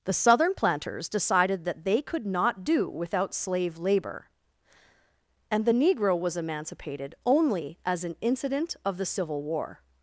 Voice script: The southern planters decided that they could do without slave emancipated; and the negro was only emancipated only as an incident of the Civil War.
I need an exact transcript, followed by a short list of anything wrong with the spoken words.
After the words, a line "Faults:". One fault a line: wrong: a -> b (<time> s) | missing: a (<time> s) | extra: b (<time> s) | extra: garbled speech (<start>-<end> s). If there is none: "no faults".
The southern planters decided that they could not do without slave labor; and the negro was emancipated only as an incident of the Civil War.
Faults:
extra: not (2.2 s)
wrong: emancipated -> labor (3.8 s)
missing: only (6.4 s)